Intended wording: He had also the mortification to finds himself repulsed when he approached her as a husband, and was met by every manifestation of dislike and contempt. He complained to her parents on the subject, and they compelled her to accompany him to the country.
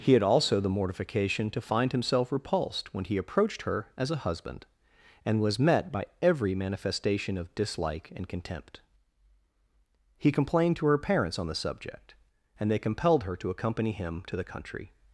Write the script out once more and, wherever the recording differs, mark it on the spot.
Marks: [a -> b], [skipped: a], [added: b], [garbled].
He had also the mortification to [finds -> find] himself repulsed when he approached her as a husband, and was met by every manifestation of dislike and contempt. He complained to her parents on the subject, and they compelled her to accompany him to the country.